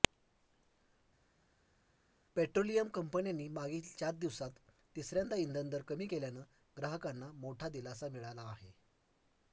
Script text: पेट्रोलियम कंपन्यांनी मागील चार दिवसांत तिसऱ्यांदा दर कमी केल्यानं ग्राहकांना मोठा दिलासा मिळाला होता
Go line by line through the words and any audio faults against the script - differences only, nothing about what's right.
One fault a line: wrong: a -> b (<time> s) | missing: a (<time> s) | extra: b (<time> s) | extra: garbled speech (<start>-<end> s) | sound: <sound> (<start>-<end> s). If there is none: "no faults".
extra: इंधन (5.4 s)
wrong: होता -> आहे (8.5 s)